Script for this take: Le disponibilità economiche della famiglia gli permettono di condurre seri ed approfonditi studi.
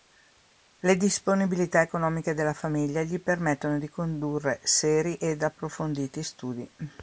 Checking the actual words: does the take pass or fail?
pass